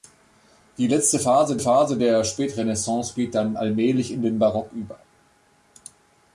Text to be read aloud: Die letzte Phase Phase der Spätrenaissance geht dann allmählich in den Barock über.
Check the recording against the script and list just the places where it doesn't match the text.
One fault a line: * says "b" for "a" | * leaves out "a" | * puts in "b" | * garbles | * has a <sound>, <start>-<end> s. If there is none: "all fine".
all fine